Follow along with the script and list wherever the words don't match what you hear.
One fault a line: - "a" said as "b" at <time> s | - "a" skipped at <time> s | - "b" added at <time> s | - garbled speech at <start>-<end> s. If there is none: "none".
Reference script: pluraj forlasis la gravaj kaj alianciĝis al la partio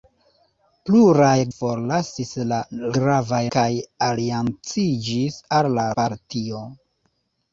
none